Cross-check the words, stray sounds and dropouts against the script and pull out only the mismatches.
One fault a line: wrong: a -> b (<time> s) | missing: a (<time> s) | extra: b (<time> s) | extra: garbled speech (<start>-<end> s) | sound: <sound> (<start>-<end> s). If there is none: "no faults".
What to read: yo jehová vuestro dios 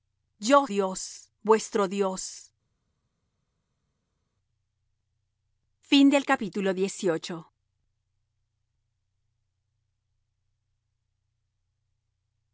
wrong: jehová -> dios (0.7 s)